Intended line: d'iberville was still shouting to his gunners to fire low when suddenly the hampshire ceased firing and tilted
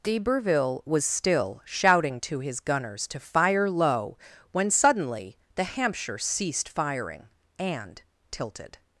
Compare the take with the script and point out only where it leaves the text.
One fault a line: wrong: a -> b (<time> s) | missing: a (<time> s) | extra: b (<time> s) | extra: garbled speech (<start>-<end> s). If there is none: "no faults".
no faults